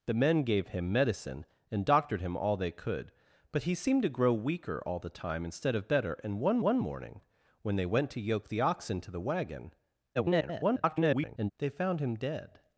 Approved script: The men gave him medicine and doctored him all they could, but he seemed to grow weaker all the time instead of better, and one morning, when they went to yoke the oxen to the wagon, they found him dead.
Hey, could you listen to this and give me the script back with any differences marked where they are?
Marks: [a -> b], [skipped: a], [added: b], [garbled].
The men gave him medicine and doctored him all they could, but he seemed to grow weaker all the time instead of better, and one [added: one] morning, when they went to yoke the oxen to the wagon, [garbled] they found him dead.